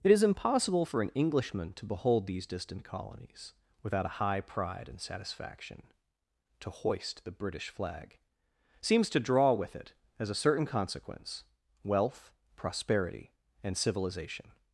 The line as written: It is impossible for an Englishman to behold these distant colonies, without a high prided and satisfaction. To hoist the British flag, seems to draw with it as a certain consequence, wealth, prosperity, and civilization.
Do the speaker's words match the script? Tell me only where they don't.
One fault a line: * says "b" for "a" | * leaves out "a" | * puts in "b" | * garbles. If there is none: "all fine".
* says "pride" for "prided"